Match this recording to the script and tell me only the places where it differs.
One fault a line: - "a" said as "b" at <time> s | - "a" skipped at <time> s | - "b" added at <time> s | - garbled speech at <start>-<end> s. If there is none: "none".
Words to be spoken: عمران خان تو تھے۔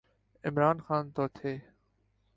none